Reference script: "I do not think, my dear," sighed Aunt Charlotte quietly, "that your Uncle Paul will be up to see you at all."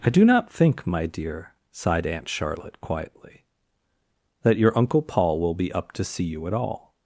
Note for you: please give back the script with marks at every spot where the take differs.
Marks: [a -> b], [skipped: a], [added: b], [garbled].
"I do not think, my dear," sighed Aunt Charlotte quietly, "that your Uncle Paul will be up to see you at all."